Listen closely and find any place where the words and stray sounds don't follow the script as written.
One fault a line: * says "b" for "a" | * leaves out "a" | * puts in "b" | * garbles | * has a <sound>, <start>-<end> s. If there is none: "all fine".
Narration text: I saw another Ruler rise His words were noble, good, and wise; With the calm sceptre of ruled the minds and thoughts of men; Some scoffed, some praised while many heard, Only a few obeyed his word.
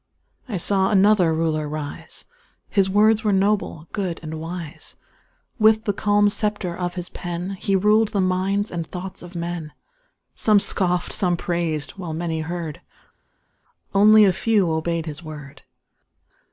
* puts in "his pen He"